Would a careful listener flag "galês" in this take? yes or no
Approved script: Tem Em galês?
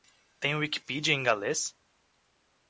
no